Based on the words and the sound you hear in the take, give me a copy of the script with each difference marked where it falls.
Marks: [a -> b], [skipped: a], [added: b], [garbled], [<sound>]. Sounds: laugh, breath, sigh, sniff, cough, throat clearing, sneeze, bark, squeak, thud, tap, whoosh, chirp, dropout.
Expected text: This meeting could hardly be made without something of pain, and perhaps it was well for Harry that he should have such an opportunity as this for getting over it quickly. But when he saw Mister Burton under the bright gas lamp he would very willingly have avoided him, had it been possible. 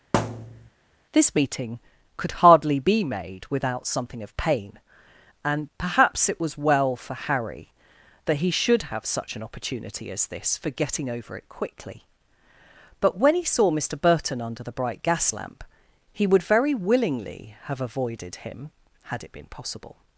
[thud] This meeting could hardly be made without something of pain, and perhaps it was well for Harry that he should have such an opportunity as this for getting over it quickly. But when he saw Mister Burton under the bright gas lamp he would very willingly have avoided him, had it been possible.